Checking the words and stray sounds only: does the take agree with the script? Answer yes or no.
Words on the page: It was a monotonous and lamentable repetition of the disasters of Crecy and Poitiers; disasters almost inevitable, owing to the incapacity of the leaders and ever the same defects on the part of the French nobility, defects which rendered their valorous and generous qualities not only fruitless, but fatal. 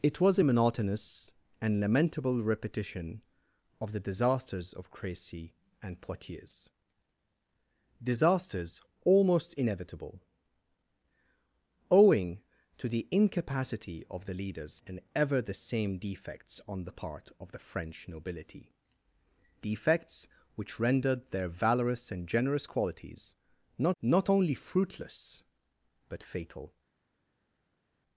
no